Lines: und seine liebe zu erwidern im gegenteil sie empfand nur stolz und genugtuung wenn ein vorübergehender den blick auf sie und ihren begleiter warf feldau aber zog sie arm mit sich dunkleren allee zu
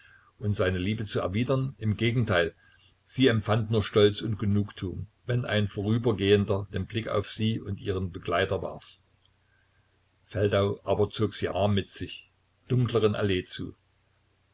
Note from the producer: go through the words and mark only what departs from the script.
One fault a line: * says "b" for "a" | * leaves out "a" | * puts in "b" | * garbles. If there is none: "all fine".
all fine